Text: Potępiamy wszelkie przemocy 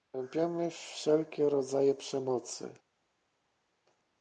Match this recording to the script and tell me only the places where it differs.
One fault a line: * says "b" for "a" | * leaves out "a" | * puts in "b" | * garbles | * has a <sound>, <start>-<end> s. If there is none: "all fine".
* puts in "rodzaje"